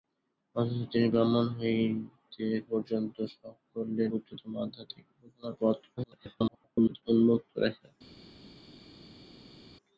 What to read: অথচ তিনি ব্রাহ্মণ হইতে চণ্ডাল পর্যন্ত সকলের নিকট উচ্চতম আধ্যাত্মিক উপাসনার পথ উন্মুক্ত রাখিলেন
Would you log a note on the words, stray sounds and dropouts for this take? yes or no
yes